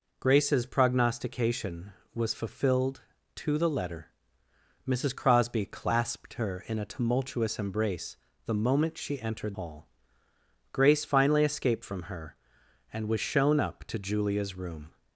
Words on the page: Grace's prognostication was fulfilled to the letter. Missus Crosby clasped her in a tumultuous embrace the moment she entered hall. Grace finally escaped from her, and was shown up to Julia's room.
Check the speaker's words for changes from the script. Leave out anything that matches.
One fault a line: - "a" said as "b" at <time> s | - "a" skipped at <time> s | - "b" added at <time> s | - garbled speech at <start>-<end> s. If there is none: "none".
none